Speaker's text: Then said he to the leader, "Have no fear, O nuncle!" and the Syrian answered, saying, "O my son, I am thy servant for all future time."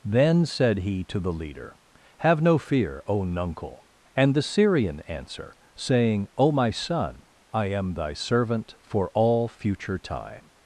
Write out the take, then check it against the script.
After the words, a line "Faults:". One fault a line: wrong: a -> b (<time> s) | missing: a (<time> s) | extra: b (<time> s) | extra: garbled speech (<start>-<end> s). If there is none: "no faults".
Then said he to the leader, "Have no fear, O nuncle!" and the Syrian answer, saying, "O my son, I am thy servant for all future time."
Faults:
wrong: answered -> answer (5.0 s)